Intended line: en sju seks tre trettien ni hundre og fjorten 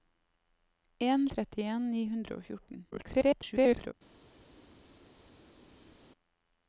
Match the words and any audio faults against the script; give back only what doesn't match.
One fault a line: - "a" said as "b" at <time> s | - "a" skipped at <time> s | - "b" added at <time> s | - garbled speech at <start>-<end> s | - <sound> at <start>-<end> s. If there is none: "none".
- "sju seks tre" skipped at 1.2 s
- garbled speech at 2.9-3.9 s